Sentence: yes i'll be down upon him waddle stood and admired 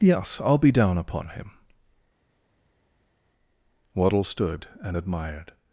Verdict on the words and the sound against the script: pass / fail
pass